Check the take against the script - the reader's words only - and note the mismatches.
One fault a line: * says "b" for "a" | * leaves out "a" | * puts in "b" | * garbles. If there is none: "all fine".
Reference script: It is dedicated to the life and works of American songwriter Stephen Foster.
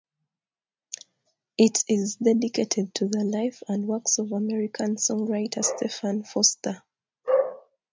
all fine